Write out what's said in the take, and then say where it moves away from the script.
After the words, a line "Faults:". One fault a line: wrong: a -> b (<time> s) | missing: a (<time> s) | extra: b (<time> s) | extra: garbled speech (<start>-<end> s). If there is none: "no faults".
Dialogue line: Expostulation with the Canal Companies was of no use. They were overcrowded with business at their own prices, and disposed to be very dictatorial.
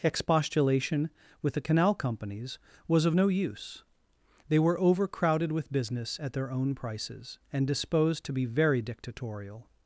Expostulation with the Canal Companies was of no use. They were overcrowded with business at their own prices, and disposed to be very dictatorial.
Faults:
no faults